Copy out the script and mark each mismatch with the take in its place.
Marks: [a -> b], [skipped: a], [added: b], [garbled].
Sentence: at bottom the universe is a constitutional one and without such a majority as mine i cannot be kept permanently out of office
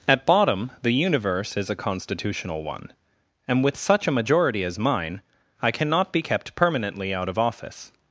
at bottom the universe is a constitutional one and [without -> with] such a majority as mine i cannot be kept permanently out of office